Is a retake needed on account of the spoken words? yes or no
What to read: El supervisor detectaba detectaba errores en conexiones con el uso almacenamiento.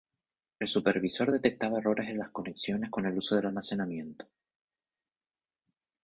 yes